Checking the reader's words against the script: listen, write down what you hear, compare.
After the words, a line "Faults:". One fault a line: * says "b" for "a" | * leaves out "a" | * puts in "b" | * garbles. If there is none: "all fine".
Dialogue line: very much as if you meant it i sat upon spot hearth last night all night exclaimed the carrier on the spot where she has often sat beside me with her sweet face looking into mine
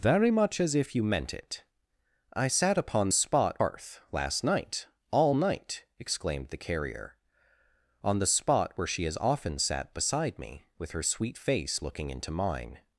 very much as if you meant it i sat upon spot hearth last night all night exclaimed the carrier on the spot where she has often sat beside me with her sweet face looking into mine
Faults:
all fine